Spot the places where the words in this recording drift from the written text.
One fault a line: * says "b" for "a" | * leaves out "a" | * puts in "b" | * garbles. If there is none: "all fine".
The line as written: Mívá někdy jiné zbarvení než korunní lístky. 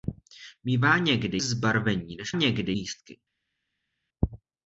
* leaves out "jiné"
* says "někdy" for "korunní"